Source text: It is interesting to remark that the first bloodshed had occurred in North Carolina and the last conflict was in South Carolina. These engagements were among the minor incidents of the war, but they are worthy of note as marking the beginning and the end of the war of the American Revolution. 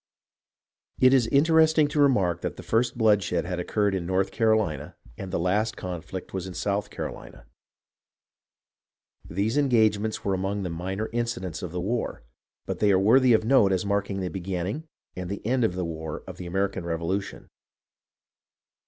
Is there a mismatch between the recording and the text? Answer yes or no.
no